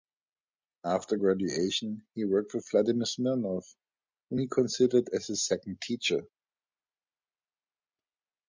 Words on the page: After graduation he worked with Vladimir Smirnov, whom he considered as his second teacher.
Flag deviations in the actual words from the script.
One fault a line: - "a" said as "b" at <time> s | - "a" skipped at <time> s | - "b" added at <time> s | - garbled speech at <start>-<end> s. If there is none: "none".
none